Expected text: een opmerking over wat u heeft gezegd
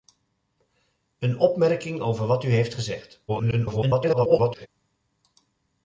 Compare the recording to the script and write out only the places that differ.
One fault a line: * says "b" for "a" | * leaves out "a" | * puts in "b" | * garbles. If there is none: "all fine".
* garbles